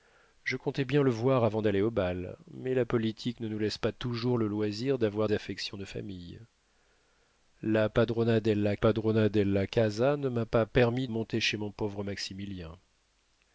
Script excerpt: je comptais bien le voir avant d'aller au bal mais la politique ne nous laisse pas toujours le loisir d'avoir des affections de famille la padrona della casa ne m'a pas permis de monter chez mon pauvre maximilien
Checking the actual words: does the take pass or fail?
fail